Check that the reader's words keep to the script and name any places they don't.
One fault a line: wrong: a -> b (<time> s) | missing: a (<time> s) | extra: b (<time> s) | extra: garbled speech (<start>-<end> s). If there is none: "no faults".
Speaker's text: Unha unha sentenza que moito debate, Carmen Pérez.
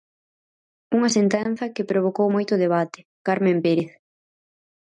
missing: unha (1.1 s)
extra: provocou (1.9 s)